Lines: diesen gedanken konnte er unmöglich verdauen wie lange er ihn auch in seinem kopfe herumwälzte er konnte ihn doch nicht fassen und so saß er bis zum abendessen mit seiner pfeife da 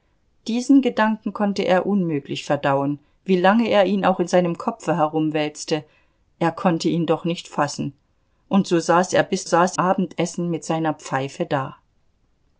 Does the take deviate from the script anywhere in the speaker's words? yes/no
yes